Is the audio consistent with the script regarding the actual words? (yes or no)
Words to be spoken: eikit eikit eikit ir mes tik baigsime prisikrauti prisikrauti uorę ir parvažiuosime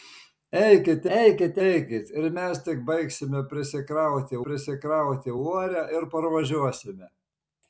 yes